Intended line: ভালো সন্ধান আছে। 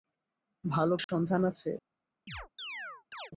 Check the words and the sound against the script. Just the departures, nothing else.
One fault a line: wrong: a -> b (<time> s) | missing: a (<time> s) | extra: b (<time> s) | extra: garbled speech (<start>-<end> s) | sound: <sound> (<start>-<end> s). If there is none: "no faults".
sound: dropout (1.0-1.1 s)
sound: chirp (2.3-3.3 s)